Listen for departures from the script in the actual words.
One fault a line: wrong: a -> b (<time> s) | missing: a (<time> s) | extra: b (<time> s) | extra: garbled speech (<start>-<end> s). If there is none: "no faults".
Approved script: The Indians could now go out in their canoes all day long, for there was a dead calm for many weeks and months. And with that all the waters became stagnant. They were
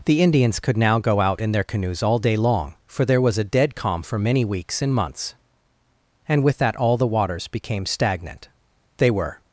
no faults